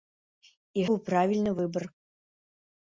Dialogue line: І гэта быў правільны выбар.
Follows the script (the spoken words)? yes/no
no